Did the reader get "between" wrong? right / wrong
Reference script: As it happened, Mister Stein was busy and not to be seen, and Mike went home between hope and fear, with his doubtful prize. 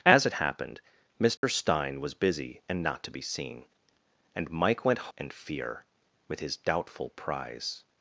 wrong